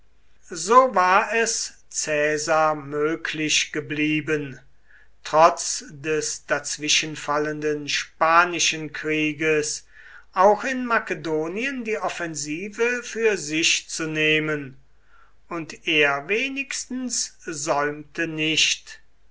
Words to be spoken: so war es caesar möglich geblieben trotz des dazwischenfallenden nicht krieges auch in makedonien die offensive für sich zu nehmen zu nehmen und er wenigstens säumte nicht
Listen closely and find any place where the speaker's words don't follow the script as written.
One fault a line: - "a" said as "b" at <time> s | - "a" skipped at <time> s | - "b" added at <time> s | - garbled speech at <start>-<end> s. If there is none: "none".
- "nicht" said as "spanischen" at 7.9 s
- "zu nehmen" skipped at 14.8 s